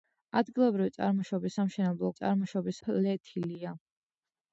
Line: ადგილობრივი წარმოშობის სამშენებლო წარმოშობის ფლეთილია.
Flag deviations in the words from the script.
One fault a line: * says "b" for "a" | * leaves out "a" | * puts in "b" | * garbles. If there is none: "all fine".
all fine